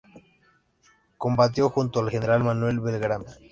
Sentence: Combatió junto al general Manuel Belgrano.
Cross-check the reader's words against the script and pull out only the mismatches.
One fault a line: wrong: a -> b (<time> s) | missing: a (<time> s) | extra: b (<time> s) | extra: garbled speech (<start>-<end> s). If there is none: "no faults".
no faults